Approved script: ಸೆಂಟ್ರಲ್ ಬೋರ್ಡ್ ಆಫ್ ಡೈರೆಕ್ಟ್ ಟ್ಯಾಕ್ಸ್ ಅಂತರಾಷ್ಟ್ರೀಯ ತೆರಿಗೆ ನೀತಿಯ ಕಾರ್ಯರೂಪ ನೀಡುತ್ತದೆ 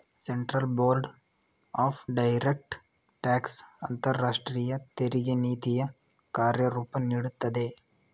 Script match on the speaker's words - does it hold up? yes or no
yes